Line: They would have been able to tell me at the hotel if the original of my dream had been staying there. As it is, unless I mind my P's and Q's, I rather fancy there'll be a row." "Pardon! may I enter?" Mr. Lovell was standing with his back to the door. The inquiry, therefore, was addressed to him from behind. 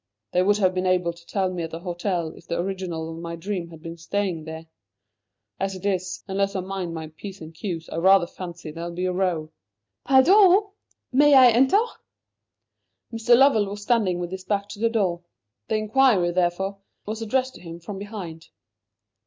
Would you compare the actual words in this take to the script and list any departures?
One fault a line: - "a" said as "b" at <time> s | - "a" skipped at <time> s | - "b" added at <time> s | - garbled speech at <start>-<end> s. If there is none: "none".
none